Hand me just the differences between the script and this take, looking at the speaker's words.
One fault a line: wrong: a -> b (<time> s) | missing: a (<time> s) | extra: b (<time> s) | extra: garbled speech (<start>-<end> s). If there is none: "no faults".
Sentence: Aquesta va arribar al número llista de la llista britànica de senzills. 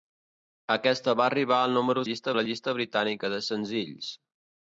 no faults